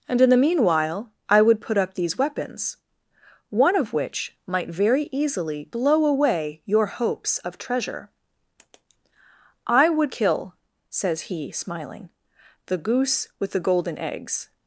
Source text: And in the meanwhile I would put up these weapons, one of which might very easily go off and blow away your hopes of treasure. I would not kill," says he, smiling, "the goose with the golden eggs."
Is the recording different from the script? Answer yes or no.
yes